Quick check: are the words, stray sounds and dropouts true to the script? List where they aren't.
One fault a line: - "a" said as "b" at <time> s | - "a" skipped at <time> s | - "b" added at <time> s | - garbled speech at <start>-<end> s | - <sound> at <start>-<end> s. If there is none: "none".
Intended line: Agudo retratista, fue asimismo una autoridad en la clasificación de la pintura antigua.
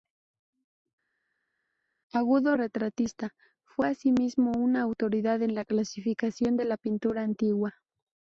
none